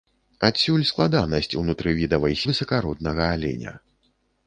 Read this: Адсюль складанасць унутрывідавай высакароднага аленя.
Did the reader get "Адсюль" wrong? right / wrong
right